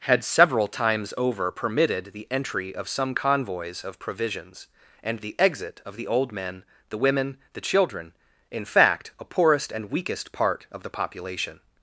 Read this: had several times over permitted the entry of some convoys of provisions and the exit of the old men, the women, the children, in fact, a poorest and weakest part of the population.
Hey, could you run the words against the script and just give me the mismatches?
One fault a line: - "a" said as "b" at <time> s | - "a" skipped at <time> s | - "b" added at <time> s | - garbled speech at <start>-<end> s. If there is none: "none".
none